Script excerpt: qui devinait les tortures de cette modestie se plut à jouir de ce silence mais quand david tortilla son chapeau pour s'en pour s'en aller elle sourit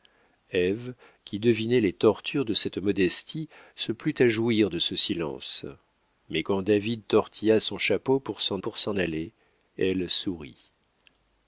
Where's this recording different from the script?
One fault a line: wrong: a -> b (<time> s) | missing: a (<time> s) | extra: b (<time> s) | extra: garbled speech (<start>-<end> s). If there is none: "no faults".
no faults